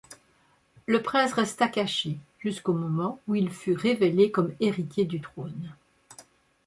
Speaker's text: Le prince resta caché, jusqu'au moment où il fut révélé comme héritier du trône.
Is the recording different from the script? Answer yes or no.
no